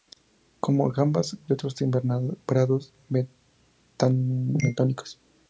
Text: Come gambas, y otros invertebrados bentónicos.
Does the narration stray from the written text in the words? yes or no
no